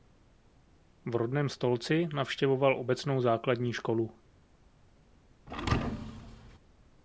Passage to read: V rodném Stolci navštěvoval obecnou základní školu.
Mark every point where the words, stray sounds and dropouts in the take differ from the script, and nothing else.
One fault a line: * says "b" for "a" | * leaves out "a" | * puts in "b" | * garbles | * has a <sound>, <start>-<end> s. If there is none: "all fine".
* has a thud, 5.5-6.6 s